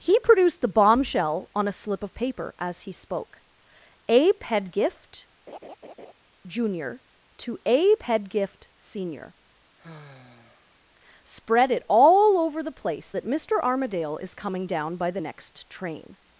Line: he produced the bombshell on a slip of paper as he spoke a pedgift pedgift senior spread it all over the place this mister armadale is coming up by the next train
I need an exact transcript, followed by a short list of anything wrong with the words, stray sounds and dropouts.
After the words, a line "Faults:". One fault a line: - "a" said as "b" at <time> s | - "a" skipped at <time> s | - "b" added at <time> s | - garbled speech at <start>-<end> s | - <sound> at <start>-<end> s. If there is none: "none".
he produced the bombshell on a slip of paper as he spoke a pedgift junior to a pedgift senior spread it all over the place that mister armadale is coming down by the next train
Faults:
- laugh at 5.5-6.1 s
- "junior to a" added at 6.5 s
- sigh at 9.8-10.8 s
- "this" said as "that" at 13.1 s
- "up" said as "down" at 14.7 s